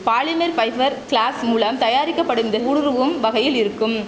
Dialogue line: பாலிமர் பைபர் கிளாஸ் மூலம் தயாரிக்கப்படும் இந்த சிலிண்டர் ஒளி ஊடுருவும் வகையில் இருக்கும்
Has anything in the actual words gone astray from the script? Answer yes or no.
yes